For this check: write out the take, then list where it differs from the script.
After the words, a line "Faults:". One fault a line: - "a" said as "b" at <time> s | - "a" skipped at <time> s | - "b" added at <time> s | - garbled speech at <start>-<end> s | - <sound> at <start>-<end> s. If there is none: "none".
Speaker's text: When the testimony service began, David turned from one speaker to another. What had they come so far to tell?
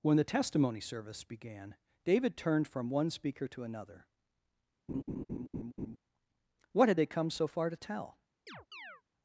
When the testimony service began, David turned from one speaker to another. What had they come so far to tell?
Faults:
- laugh at 4.9-6.0 s
- chirp at 8.5-9.0 s